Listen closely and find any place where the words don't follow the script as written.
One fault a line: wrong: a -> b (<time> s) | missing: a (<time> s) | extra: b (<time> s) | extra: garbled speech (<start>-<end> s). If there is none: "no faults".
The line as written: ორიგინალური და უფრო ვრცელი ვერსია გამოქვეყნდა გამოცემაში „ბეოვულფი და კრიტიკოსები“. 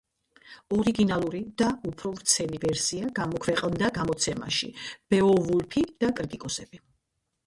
no faults